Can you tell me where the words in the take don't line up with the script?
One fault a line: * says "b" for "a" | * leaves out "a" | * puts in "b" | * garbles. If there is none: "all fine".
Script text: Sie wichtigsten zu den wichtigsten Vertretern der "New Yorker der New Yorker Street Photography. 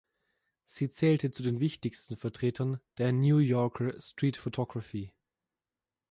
* says "zählte" for "wichtigsten"
* leaves out "der New Yorker"